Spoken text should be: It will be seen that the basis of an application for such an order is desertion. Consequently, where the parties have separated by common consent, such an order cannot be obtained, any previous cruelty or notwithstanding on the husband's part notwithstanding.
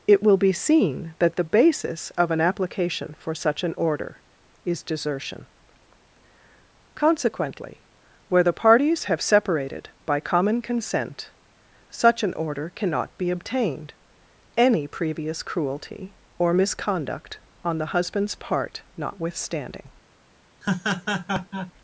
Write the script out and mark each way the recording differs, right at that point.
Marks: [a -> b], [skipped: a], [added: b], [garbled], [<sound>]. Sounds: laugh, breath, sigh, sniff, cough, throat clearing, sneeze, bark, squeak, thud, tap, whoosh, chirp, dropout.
It will be seen that the basis of an application for such an order is desertion. Consequently, where the parties have separated by common consent, such an order cannot be obtained, any previous cruelty or [notwithstanding -> misconduct] on the husband's part notwithstanding. [laugh]